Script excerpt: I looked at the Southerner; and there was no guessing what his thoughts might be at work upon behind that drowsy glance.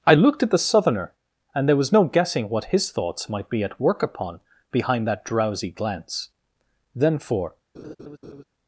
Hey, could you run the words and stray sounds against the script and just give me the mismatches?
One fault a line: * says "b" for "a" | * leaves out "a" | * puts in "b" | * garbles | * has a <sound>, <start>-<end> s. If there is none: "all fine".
* puts in "Then for"
* has a laugh, 7.7-8.4 s